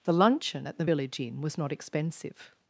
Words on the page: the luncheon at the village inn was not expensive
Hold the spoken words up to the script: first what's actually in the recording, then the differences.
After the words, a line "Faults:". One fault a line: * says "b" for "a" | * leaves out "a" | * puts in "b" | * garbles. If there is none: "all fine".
the luncheon at the village inn was not expensive
Faults:
all fine